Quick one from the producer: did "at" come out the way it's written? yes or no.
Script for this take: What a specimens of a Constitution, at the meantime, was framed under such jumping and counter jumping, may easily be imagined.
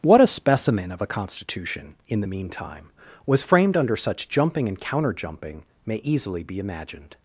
no